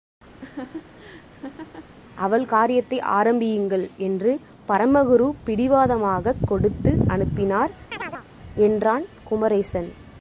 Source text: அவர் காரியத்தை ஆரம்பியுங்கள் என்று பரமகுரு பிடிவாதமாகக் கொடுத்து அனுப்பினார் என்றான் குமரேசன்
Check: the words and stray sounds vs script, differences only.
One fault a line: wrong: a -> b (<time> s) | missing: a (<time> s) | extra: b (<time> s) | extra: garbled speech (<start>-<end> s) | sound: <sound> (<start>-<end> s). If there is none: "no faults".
sound: laugh (0.4-1.9 s)
wrong: அவர் -> அவள் (2.1 s)
sound: chirp (7.9-8.3 s)